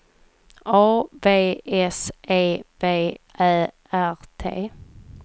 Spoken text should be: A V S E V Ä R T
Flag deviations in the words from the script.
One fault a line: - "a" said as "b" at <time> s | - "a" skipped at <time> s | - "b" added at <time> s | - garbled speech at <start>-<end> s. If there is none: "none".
none